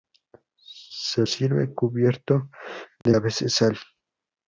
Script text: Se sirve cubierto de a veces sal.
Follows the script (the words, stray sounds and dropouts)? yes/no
no